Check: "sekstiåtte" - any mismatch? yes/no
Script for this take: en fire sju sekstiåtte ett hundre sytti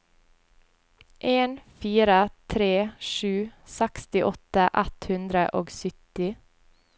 no